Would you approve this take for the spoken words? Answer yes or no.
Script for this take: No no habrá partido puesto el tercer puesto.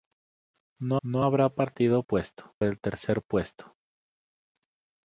yes